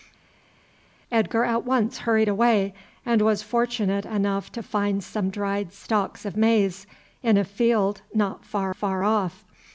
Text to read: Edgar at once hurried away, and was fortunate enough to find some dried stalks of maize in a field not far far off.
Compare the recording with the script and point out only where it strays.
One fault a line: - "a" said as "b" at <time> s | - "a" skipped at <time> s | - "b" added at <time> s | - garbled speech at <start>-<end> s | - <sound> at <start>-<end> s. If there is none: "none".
none